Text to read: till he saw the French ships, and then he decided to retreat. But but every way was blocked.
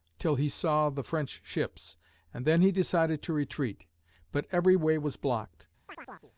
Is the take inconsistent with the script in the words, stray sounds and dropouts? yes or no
yes